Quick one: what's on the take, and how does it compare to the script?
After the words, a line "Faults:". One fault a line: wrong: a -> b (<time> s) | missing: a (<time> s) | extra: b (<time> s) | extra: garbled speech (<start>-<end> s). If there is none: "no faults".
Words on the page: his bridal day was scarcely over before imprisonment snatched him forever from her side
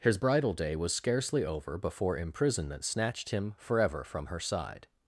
his bridal day was scarcely over before imprisonment snatched him forever from her side
Faults:
no faults